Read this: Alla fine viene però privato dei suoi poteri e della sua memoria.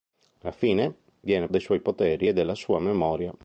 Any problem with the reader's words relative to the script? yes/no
yes